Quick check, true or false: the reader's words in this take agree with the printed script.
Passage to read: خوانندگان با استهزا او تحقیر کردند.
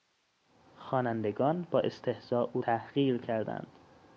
true